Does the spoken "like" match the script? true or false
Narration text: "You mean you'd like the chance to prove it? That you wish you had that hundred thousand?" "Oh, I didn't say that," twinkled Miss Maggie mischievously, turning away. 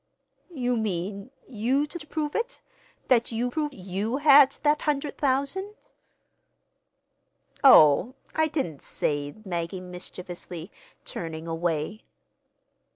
false